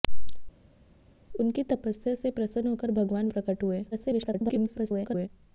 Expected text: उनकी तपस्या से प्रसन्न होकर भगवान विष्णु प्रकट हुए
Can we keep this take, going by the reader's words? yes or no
no